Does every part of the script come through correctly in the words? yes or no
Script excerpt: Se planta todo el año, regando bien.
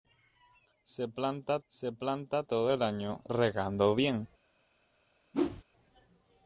no